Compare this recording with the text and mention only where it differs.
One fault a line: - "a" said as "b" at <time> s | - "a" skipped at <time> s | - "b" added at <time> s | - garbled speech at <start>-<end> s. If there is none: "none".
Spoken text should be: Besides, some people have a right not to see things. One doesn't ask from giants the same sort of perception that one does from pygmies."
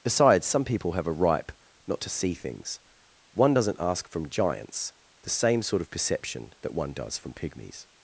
- "right" said as "ripe" at 1.1 s